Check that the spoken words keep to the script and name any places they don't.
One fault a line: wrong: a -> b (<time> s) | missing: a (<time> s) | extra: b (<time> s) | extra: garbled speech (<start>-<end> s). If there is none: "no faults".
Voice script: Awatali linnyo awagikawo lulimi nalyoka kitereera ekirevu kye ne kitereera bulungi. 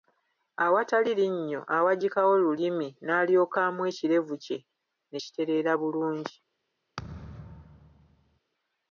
wrong: kitereera -> amwa (3.7 s)